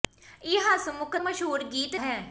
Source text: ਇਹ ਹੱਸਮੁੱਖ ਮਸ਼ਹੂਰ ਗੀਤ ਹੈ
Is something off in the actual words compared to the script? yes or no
no